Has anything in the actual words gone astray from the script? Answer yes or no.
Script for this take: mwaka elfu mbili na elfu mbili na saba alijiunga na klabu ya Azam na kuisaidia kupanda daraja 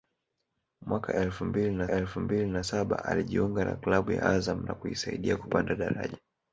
no